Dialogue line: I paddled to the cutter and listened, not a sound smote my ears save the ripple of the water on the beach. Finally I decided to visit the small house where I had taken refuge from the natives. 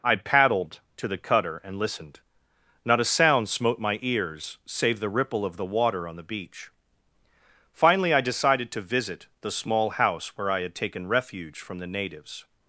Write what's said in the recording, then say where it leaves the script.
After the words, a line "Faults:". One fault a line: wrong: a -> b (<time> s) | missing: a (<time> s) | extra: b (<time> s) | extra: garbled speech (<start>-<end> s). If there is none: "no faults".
I paddled to the cutter and listened, not a sound smote my ears save the ripple of the water on the beach. Finally I decided to visit the small house where I had taken refuge from the natives.
Faults:
no faults